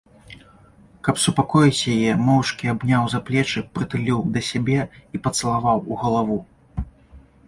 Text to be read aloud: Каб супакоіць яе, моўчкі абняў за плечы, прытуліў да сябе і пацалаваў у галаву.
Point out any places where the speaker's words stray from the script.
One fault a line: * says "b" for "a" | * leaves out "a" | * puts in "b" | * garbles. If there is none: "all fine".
all fine